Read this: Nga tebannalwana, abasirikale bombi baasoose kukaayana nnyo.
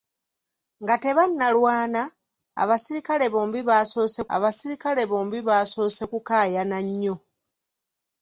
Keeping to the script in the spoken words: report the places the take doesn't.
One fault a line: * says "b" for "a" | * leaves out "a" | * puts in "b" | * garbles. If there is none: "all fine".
* puts in "abasirikale bombi baasoose"